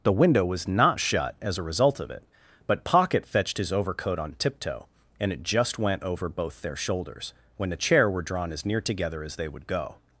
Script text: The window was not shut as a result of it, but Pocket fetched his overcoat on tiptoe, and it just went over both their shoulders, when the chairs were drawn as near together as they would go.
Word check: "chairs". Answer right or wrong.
wrong